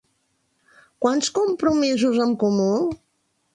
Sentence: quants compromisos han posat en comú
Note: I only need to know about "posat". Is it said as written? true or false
false